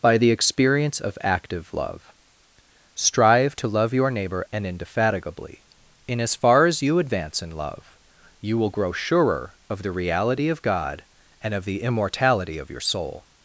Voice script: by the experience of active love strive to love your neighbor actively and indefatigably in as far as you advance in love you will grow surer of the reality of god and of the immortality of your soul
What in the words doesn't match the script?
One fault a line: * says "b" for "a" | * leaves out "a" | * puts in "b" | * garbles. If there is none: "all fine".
* leaves out "actively"